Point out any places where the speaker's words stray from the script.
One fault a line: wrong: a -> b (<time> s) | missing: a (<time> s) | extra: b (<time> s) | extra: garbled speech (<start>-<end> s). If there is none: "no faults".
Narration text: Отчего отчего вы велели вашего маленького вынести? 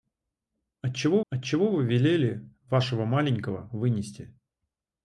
no faults